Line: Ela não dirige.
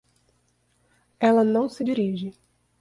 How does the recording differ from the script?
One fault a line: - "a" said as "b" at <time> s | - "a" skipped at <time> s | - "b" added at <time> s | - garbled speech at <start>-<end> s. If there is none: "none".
- "se" added at 1.7 s